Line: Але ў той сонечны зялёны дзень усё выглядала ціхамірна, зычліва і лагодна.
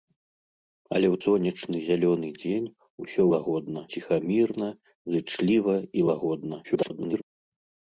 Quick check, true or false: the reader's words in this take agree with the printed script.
false